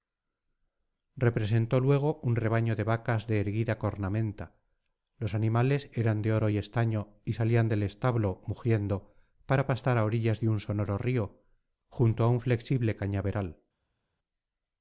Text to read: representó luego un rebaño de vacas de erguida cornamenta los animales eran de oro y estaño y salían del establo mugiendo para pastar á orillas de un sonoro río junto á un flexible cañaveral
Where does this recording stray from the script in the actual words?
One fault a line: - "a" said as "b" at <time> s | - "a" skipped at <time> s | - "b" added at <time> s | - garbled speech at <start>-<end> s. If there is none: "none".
none